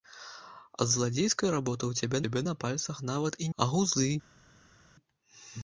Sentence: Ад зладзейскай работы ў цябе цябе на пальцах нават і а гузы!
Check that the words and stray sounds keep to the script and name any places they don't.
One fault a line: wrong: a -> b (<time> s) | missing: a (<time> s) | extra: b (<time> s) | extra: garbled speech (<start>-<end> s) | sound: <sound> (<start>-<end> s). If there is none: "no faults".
no faults